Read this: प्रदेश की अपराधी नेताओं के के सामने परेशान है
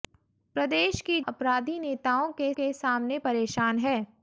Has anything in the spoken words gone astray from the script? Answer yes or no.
no